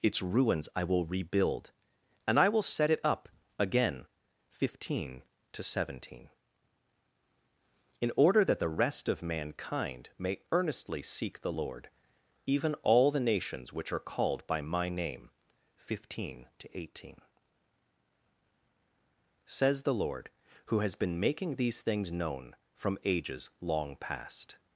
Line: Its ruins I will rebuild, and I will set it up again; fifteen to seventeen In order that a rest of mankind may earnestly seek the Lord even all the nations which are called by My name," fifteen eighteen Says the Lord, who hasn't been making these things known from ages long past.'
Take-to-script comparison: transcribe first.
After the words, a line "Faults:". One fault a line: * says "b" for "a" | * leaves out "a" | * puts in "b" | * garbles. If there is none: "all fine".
Its ruins I will rebuild, and I will set it up again; fifteen to seventeen In order that the rest of mankind may earnestly seek the Lord even all the nations which are called by My name," fifteen to eighteen Says the Lord, who has been making these things known from ages long past.'
Faults:
* says "the" for "a"
* puts in "to"
* says "has" for "hasn't"